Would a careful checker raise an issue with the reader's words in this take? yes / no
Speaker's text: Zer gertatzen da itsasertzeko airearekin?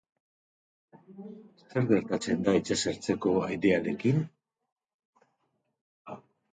no